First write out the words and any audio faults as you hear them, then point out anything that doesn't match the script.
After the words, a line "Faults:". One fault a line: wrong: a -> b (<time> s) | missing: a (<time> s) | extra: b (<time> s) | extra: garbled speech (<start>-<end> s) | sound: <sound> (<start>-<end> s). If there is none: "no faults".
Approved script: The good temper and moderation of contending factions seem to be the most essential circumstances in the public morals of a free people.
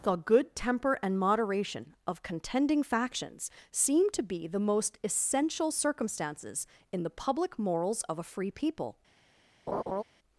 The good temper and moderation of contending factions seem to be the most essential circumstances in the public morals of a free people.
Faults:
sound: laugh (9.7-10.0 s)